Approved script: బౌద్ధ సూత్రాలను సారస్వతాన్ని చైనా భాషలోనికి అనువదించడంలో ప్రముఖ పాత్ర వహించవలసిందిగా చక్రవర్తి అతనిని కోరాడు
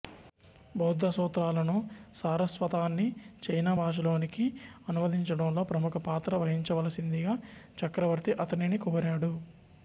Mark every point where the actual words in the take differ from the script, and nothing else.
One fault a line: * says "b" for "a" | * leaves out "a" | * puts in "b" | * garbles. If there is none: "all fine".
all fine